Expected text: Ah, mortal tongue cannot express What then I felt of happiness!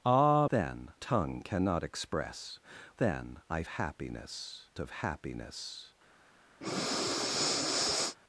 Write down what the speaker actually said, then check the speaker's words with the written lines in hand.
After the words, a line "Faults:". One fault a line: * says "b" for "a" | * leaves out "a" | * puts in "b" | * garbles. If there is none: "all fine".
Ah, then tongue cannot express Then I happiness of happiness!
Faults:
* says "then" for "mortal"
* leaves out "What"
* says "happiness" for "felt"